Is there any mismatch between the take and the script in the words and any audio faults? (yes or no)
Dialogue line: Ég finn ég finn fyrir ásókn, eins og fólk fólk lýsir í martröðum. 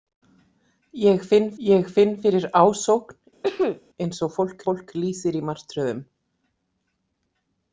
yes